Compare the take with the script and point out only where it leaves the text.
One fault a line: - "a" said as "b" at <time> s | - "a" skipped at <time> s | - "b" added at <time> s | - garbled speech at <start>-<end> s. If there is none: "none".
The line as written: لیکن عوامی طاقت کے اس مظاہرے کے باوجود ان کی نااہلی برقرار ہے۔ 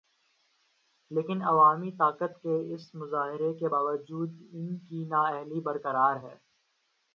none